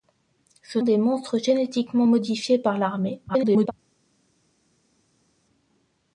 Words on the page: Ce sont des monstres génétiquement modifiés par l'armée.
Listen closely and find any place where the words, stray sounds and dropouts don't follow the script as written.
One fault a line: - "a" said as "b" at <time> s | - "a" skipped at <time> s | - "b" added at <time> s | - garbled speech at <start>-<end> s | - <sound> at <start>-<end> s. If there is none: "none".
- "sont" skipped at 0.8 s
- garbled speech at 3.3-3.7 s